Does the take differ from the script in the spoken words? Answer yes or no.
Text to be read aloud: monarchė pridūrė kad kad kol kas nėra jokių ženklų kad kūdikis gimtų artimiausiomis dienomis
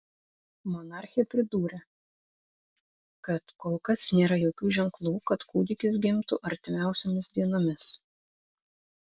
yes